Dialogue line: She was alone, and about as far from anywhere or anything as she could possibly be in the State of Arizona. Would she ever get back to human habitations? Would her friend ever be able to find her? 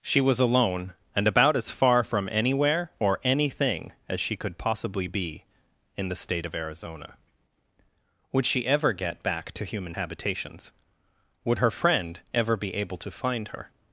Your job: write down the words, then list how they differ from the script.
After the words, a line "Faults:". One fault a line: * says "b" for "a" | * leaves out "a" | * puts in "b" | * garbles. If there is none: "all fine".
She was alone, and about as far from anywhere or anything as she could possibly be in the State of Arizona. Would she ever get back to human habitations? Would her friend ever be able to find her?
Faults:
all fine